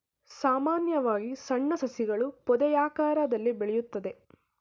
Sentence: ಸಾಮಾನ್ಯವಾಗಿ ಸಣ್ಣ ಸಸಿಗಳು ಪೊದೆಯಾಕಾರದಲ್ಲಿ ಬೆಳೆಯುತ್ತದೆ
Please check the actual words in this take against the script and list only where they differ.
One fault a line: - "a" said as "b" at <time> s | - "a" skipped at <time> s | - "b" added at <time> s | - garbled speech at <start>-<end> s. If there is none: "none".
none